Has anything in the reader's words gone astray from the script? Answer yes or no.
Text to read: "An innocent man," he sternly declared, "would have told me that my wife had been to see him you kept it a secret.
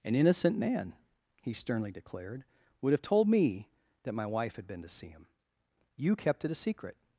no